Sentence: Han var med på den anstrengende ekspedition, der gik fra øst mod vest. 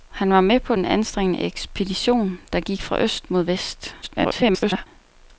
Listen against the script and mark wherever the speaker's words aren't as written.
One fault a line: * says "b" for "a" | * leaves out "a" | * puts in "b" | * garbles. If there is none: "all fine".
* garbles